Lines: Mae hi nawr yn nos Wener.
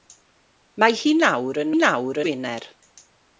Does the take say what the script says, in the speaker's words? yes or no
no